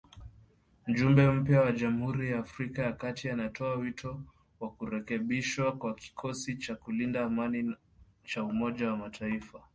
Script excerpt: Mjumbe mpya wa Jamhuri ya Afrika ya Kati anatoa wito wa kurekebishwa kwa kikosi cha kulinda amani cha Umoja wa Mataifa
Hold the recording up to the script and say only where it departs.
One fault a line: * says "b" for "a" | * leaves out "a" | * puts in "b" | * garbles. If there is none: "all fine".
all fine